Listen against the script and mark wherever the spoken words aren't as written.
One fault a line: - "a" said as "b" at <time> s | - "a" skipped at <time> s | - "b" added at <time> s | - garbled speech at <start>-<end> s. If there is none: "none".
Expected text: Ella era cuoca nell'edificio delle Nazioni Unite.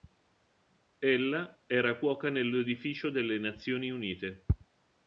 none